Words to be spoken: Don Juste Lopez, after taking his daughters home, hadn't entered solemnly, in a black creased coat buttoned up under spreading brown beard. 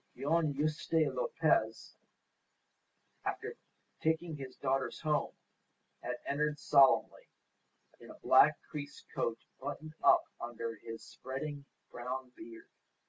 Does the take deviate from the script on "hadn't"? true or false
true